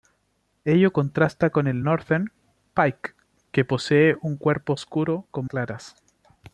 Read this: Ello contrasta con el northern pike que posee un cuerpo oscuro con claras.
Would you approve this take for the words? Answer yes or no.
yes